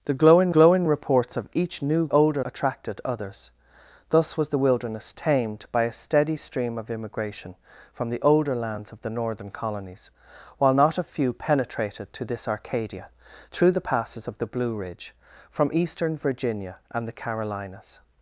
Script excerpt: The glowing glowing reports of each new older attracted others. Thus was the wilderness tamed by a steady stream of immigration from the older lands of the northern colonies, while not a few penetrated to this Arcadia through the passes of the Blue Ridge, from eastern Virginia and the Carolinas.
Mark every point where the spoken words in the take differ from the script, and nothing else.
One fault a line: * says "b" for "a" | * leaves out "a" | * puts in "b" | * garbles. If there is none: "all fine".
all fine